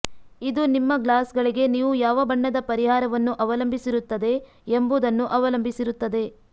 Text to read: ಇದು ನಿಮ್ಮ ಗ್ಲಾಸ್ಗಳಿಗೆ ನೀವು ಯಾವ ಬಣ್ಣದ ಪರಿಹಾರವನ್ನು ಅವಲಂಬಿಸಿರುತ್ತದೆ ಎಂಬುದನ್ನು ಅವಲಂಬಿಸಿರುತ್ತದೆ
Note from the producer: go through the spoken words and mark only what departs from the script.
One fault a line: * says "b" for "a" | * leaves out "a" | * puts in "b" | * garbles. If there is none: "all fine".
all fine